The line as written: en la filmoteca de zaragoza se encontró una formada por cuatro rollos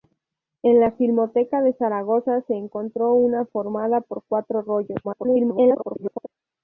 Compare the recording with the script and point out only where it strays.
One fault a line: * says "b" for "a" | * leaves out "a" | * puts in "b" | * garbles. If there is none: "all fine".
* garbles